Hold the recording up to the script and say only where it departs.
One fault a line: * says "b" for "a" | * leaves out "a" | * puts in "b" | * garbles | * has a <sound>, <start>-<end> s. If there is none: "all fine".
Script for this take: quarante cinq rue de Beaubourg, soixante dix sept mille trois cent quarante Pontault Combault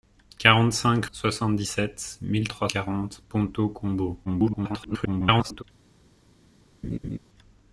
* leaves out "rue de Beaubourg"
* leaves out "cent"
* garbles
* has a laugh, 6.8-7.2 s